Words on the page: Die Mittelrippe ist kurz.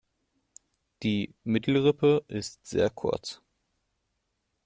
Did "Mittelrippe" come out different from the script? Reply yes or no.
no